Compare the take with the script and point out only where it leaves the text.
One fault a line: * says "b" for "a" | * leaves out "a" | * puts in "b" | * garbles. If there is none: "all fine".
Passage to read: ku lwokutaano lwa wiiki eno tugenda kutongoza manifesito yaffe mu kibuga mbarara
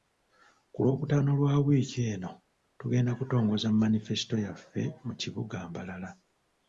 all fine